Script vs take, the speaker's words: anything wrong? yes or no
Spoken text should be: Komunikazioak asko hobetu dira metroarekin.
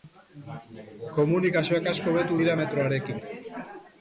no